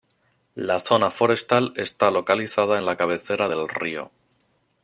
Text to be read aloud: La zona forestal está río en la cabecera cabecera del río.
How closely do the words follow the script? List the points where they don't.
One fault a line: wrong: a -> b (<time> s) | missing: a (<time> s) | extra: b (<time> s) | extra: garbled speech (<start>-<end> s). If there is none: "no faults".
wrong: río -> localizada (2.1 s)
missing: cabecera (3.5 s)